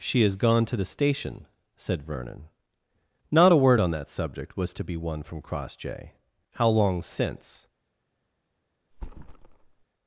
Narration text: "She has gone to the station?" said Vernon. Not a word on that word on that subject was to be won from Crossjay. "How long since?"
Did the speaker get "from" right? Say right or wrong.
right